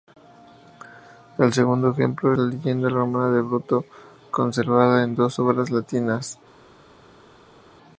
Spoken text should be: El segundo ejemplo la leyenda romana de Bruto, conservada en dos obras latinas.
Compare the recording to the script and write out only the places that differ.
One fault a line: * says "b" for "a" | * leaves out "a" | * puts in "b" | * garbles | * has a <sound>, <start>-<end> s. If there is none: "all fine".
all fine